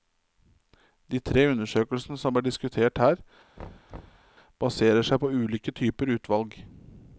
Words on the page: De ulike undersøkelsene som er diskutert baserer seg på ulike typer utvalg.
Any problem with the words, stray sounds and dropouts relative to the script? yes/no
yes